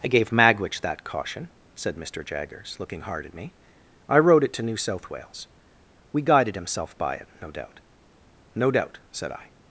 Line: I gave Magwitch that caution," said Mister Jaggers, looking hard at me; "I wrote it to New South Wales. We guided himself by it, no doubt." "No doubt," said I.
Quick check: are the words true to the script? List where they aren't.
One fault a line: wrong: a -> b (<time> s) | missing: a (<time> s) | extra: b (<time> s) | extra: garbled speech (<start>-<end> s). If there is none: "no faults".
no faults